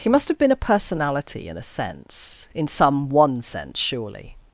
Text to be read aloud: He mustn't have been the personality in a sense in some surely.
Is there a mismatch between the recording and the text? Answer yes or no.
yes